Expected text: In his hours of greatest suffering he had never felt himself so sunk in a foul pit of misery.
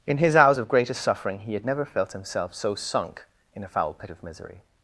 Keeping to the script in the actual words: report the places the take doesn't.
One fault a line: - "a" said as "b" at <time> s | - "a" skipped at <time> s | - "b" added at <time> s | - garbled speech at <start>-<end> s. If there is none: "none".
none